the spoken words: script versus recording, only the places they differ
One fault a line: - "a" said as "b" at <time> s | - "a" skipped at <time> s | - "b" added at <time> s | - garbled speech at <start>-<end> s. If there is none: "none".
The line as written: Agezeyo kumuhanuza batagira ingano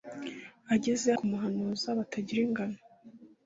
none